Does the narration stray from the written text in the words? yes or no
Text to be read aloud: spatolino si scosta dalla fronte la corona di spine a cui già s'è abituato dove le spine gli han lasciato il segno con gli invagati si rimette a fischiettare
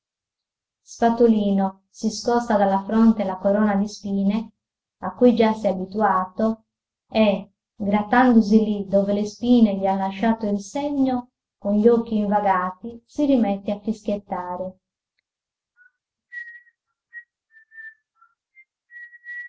yes